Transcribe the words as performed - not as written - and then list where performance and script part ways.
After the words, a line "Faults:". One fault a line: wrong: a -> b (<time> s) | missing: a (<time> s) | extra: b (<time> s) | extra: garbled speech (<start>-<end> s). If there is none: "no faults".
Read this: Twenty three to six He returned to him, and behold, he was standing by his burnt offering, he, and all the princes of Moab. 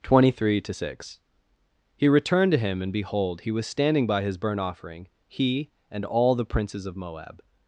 Twenty three to six He returned to him, and behold, he was standing by his burnt offering, he, and all the princes of Moab.
Faults:
no faults